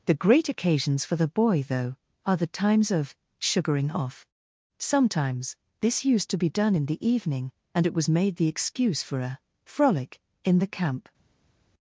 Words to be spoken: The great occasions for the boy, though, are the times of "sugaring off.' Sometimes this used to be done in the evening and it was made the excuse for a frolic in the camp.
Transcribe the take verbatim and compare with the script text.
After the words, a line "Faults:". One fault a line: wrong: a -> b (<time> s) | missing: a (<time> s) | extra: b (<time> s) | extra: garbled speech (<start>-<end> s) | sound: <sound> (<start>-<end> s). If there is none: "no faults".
The great occasions for the boy, though, are the times of "sugaring off.' Sometimes this used to be done in the evening and it was made the excuse for a frolic in the camp.
Faults:
no faults